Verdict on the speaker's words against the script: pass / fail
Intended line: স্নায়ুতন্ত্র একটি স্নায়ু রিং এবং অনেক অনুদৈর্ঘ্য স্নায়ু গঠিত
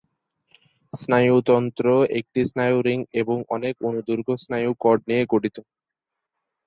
fail